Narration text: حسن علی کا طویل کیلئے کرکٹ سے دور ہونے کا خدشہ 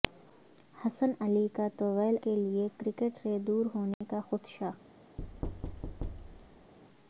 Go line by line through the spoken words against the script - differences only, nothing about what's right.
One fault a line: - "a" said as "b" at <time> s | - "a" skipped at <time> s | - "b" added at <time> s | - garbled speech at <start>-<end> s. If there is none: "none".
none